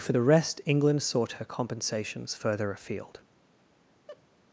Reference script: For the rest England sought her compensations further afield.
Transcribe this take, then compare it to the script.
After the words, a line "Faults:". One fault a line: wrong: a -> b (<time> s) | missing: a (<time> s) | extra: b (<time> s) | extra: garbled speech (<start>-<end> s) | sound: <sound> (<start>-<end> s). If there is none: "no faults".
For the rest England sought her compensations further afield.
Faults:
sound: laugh (4.1-4.2 s)